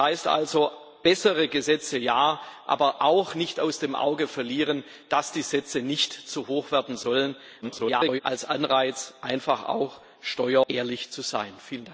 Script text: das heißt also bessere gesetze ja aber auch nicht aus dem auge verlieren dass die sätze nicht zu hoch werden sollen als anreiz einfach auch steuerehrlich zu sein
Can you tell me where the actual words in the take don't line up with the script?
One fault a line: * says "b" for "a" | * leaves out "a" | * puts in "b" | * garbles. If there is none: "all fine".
* garbles